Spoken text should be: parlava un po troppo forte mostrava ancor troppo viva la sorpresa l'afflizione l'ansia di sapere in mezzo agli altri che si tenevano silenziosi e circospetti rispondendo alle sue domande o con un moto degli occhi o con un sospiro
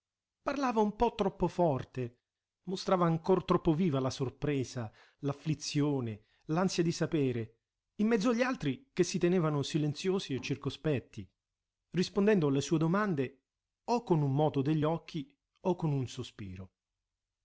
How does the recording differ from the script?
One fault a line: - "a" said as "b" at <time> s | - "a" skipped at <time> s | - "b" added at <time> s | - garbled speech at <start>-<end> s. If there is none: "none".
none